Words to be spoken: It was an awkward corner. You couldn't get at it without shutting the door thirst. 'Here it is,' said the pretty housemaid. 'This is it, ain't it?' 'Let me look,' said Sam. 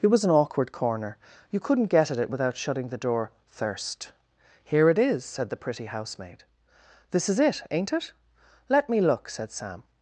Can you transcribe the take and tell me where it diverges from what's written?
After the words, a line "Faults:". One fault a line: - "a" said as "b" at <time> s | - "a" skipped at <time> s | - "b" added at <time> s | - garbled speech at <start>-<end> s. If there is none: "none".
It was an awkward corner. You couldn't get at it without shutting the door thirst. 'Here it is,' said the pretty housemaid. 'This is it, ain't it?' 'Let me look,' said Sam.
Faults:
none